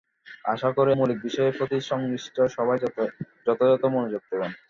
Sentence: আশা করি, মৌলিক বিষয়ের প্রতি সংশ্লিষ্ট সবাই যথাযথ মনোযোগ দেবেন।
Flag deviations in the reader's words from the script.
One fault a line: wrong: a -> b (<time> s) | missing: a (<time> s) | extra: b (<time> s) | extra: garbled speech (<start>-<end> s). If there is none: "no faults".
no faults